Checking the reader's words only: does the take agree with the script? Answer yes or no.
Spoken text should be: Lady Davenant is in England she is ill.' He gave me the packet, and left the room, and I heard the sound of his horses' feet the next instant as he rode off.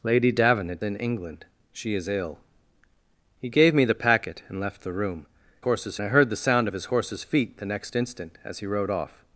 no